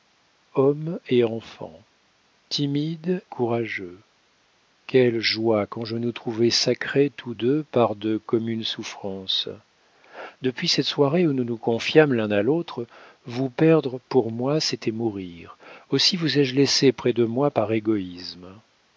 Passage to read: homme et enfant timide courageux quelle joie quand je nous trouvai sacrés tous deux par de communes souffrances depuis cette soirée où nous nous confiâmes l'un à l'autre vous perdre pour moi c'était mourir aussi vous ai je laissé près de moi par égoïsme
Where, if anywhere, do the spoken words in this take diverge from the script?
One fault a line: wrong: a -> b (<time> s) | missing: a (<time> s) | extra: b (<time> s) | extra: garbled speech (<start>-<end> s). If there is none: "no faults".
no faults